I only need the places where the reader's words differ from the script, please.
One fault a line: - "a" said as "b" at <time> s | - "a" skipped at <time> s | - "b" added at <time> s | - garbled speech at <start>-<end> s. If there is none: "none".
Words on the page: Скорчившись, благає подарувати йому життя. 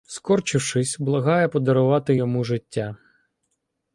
none